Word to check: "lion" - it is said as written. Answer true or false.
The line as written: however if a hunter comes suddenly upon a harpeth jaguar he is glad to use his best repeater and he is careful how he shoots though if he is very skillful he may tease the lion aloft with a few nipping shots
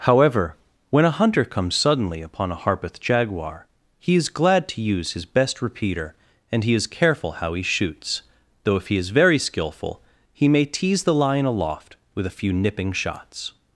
true